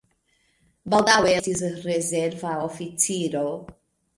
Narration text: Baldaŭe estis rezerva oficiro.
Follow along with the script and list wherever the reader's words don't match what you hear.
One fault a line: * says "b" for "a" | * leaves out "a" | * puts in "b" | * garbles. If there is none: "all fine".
all fine